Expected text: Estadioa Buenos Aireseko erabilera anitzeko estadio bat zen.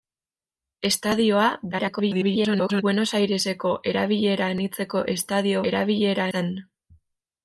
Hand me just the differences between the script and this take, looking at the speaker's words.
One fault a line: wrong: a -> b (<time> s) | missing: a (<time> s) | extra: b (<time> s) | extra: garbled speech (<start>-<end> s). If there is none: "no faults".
extra: garbled speech (1.7-2.8 s)
wrong: bat -> erabilera (5.7 s)